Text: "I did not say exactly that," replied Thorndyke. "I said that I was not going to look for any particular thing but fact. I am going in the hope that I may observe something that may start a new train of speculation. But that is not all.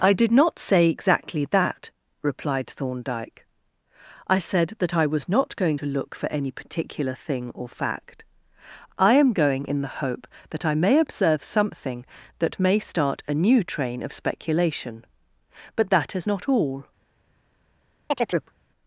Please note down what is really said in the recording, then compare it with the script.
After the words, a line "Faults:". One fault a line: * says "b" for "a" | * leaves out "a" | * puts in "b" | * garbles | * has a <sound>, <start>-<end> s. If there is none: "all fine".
"I did not say exactly that," replied Thorndyke. "I said that I was not going to look for any particular thing or fact. I am going in the hope that I may observe something that may start a new train of speculation. But that is not all.
Faults:
* says "or" for "but"
* has a chirp, 18.1-18.5 s